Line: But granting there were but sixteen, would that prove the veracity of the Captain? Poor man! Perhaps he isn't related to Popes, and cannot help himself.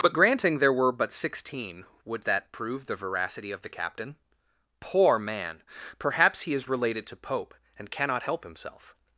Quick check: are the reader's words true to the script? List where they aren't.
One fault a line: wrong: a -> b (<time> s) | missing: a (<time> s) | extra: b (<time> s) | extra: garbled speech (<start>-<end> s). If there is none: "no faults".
wrong: isn't -> is (6.5 s)
wrong: Popes -> Pope (7.2 s)